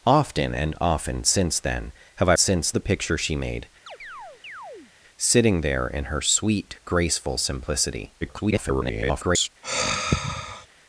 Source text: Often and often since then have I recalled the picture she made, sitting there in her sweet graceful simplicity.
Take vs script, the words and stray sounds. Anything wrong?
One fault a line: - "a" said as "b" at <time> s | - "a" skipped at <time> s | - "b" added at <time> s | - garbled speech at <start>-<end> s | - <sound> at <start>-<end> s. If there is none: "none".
- "recalled" said as "since" at 2.3 s
- chirp at 3.9-4.9 s
- garbled speech at 8.2-9.5 s
- sigh at 9.6-10.7 s